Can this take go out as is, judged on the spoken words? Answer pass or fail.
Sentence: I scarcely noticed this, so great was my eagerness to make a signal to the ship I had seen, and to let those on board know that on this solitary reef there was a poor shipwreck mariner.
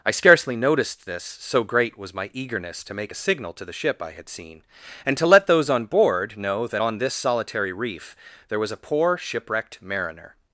fail